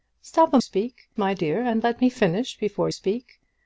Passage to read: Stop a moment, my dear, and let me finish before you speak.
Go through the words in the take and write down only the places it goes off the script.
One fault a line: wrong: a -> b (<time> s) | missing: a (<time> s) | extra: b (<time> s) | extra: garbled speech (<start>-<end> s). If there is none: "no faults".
wrong: moment -> speak (0.6 s)
missing: you (2.9 s)